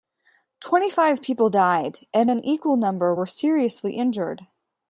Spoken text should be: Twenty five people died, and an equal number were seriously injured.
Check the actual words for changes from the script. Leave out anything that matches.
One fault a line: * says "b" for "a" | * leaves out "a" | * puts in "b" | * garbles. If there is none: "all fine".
all fine